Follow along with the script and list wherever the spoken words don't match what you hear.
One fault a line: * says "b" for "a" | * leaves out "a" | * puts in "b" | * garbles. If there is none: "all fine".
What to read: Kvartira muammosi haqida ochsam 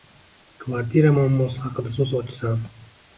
* puts in "so‘z"